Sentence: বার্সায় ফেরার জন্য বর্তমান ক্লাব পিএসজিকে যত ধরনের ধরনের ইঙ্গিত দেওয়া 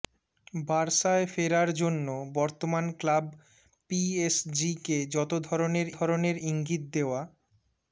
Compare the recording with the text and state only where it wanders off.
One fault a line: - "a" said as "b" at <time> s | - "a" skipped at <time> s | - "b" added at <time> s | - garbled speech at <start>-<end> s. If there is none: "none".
none